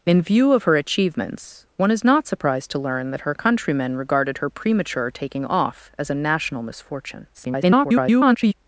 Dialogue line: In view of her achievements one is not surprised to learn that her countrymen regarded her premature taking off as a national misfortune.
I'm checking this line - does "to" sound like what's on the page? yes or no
yes